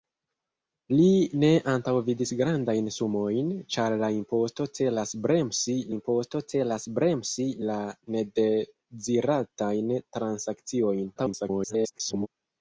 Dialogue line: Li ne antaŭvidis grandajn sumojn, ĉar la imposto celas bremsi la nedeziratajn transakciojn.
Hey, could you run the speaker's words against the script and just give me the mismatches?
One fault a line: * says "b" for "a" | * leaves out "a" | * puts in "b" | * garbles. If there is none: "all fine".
* puts in "imposto celas bremsi"
* garbles